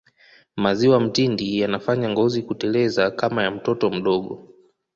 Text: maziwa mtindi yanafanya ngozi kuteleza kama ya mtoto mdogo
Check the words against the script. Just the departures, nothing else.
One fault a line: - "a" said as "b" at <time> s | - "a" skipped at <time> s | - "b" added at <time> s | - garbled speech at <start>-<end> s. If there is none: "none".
none